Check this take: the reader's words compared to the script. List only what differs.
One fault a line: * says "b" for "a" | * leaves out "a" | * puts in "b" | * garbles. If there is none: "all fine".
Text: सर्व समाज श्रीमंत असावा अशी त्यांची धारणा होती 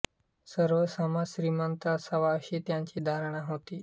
all fine